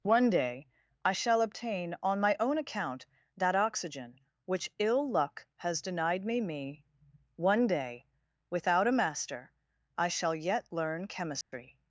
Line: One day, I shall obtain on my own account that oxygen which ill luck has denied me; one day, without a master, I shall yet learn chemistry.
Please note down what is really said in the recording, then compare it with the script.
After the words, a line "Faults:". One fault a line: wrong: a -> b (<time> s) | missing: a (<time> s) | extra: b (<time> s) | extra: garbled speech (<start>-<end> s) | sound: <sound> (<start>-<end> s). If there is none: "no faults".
One day, I shall obtain on my own account that oxygen which ill luck has denied me me; one day, without a master, I shall yet learn chemistry.
Faults:
extra: me (6.4 s)
sound: dropout (11.4-11.5 s)